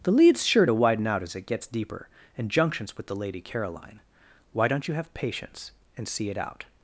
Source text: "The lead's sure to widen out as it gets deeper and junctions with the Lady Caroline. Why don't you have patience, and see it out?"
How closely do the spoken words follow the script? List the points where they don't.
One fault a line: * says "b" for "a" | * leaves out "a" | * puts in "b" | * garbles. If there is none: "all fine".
all fine